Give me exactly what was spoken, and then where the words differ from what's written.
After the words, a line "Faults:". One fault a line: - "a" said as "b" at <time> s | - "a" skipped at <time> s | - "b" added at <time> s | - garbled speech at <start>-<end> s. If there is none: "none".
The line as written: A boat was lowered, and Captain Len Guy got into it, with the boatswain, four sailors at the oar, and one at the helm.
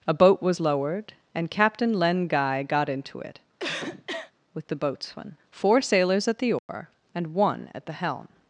A boat was lowered, and Captain Len Guy got into it, with the boatswain, four sailors at the oar, and one at the helm.
Faults:
none